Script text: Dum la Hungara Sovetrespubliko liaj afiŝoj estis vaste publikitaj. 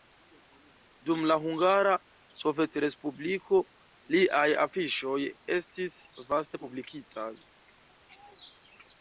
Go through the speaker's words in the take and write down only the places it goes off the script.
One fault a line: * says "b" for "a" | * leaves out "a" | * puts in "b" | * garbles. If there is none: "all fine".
all fine